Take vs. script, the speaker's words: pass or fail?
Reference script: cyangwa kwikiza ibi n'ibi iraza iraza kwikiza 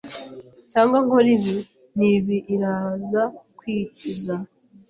fail